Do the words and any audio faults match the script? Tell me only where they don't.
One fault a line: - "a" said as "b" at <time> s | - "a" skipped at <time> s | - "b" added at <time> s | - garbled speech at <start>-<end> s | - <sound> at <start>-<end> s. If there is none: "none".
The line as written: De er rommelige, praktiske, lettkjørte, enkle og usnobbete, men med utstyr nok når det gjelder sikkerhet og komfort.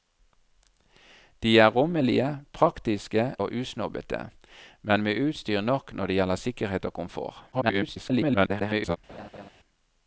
- "lettkjørte enkle" skipped at 3.2 s
- garbled speech at 7.5-9.0 s
- laugh at 9.1-9.5 s